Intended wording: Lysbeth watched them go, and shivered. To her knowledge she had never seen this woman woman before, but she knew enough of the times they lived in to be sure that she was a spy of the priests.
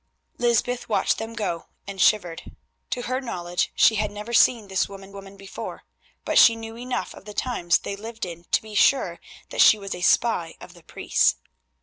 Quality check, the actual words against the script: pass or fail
pass